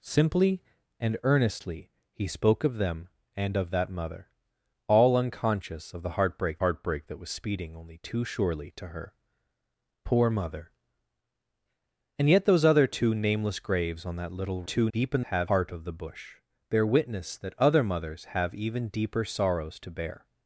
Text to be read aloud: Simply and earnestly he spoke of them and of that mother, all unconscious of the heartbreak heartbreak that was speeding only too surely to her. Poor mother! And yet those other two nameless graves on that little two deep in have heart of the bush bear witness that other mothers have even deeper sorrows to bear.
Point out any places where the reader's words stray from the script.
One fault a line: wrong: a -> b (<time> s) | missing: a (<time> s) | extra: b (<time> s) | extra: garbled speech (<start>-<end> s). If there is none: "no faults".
no faults